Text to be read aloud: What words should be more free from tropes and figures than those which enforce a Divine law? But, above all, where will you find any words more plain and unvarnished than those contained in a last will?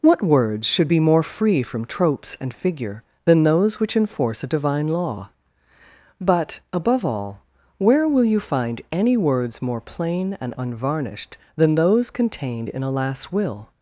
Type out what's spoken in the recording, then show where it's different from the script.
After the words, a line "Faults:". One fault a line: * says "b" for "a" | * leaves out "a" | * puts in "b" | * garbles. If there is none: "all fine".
What words should be more free from tropes and figure than those which enforce a Divine law? But, above all, where will you find any words more plain and unvarnished than those contained in a last will?
Faults:
* says "figure" for "figures"